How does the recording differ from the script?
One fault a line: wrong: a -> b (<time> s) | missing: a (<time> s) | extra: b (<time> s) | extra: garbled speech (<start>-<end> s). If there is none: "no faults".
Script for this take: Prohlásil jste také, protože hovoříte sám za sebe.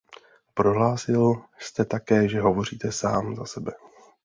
wrong: protože -> že (2.3 s)